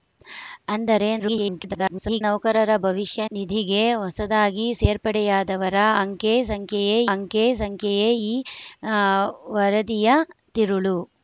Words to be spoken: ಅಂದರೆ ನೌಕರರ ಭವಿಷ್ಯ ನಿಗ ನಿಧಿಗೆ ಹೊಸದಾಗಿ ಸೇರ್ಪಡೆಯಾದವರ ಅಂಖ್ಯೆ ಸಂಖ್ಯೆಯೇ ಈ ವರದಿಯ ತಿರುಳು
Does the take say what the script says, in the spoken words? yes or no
no